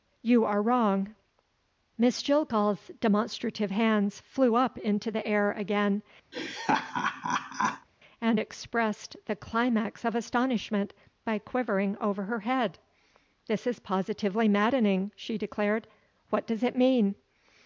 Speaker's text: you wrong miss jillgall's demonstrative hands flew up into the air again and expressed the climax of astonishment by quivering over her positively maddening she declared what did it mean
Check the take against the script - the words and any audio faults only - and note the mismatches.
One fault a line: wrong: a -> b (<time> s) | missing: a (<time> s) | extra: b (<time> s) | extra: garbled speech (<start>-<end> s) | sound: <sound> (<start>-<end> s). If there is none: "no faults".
extra: are (0.5 s)
sound: laugh (6.3-7.9 s)
extra: head this is (12.4 s)
wrong: did -> does (16.5 s)